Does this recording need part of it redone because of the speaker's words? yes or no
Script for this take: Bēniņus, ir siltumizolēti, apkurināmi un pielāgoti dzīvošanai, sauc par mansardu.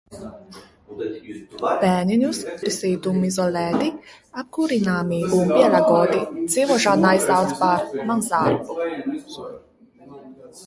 no